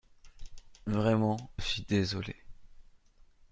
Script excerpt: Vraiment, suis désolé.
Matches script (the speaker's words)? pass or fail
pass